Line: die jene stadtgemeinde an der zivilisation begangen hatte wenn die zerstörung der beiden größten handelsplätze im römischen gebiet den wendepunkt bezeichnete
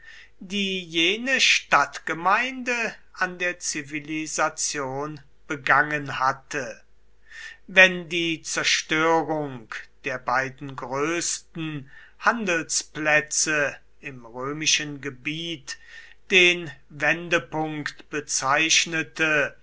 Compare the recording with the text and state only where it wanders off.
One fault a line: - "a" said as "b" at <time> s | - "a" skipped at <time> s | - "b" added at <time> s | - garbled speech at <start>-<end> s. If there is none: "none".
none